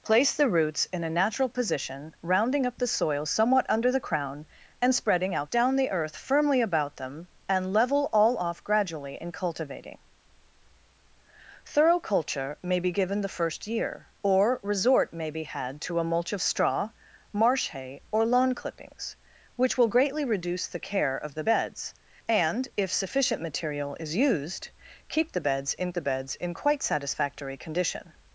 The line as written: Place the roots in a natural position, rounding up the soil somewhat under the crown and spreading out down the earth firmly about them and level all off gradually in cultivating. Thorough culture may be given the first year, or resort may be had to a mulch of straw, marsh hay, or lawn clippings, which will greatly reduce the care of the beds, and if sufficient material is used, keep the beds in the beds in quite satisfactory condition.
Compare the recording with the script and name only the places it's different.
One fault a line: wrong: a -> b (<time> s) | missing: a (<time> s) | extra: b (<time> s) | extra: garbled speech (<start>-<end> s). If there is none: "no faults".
no faults